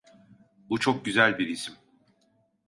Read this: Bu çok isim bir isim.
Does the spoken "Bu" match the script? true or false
true